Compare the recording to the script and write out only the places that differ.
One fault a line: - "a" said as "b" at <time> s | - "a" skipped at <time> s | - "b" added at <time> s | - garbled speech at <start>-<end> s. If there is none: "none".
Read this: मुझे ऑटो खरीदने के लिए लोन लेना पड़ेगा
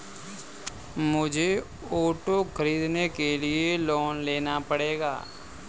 none